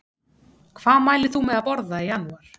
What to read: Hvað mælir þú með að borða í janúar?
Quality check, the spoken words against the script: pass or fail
pass